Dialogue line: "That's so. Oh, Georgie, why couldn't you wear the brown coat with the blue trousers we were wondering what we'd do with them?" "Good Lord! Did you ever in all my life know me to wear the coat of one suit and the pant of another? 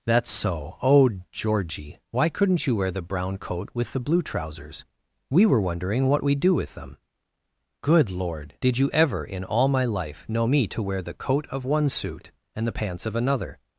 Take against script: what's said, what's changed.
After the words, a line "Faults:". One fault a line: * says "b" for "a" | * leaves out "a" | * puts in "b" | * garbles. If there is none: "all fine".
"That's so. Oh, Georgie, why couldn't you wear the brown coat with the blue trousers we were wondering what we'd do with them?" "Good Lord! Did you ever in all my life know me to wear the coat of one suit and the pants of another?
Faults:
* says "pants" for "pant"